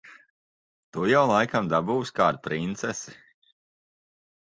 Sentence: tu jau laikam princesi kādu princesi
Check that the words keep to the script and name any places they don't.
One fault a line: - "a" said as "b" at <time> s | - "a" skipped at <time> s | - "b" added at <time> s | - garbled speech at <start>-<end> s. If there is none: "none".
- "princesi" said as "dabūsi" at 1.8 s